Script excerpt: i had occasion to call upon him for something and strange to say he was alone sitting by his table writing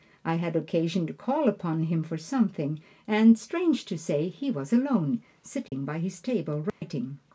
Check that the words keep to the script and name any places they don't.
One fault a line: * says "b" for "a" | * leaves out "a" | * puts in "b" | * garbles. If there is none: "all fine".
all fine